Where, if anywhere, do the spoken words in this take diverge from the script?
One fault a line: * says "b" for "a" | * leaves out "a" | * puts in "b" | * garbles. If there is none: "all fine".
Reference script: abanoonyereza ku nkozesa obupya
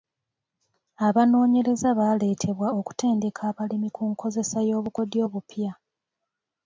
* puts in "baaleetebwa okutendeka abalimi"
* puts in "y'obukodyo"